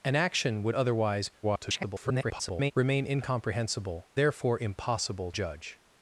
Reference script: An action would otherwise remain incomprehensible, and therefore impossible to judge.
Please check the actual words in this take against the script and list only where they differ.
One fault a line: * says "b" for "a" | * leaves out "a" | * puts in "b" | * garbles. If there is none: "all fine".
* garbles
* leaves out "and"
* leaves out "to"